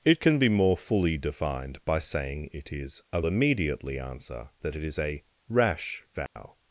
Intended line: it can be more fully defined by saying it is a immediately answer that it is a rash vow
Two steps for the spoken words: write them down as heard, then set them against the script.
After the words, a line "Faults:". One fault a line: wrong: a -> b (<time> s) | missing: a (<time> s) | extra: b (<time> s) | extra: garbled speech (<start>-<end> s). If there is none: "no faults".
it can be more fully defined by saying it is a immediately answer that it is a rash vow
Faults:
no faults